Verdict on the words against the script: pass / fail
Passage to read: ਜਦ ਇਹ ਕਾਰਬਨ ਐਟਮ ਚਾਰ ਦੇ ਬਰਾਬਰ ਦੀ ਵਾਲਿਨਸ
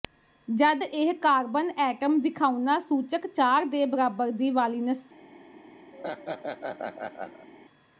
fail